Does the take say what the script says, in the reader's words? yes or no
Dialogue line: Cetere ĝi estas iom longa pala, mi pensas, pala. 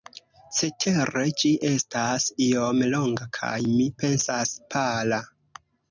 no